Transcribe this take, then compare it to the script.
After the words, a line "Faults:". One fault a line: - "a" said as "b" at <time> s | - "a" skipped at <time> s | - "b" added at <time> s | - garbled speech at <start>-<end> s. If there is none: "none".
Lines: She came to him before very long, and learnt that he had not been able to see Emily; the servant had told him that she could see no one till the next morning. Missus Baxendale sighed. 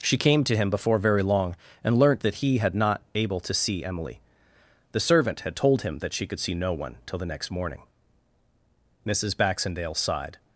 She came to him before very long, and learnt that he had not able to see Emily; the servant had told him that she could see no one till the next morning. Missus Baxendale sighed.
Faults:
- "been" skipped at 3.0 s